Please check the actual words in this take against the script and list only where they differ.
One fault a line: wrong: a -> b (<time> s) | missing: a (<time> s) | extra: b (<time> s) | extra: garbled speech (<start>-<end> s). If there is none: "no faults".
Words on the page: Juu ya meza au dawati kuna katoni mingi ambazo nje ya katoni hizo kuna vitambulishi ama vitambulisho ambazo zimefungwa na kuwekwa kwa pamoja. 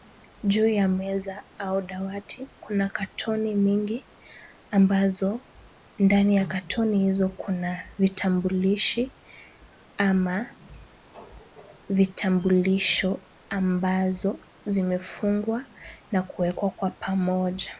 wrong: nje -> ndani (6.0 s)